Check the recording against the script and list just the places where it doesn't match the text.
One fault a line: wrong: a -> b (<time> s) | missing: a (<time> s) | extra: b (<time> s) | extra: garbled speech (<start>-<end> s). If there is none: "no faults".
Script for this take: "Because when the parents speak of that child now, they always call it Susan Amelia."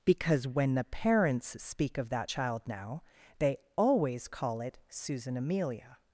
no faults